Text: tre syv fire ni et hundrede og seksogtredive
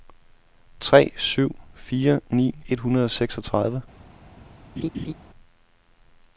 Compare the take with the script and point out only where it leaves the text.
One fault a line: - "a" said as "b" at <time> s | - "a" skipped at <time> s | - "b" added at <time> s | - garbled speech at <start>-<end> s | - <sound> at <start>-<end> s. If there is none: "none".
- laugh at 4.8-5.1 s